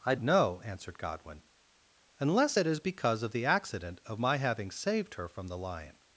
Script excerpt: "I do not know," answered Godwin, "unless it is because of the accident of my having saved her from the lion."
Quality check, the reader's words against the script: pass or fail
fail